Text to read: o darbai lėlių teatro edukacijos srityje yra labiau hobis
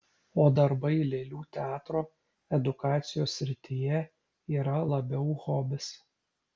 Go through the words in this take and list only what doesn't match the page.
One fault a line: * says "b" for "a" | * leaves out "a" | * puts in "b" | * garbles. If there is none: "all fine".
all fine